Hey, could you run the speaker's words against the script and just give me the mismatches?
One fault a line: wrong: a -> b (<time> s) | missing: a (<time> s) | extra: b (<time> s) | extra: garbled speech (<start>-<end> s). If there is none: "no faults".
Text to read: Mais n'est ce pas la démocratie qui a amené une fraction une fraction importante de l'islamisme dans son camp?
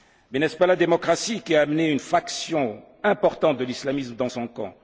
missing: une fraction (2.8 s)